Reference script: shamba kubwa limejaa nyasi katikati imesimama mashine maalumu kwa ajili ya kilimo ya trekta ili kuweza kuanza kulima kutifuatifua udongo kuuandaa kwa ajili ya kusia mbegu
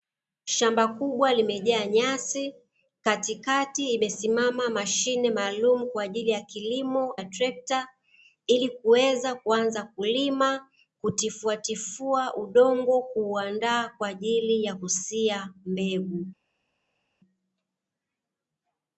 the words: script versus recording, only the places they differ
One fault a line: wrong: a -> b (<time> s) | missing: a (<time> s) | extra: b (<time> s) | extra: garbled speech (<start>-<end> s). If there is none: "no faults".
no faults